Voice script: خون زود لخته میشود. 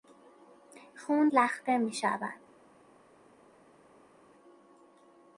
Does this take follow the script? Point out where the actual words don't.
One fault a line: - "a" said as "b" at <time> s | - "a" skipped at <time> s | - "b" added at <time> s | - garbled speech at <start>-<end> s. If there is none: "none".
- "زود" skipped at 1.3 s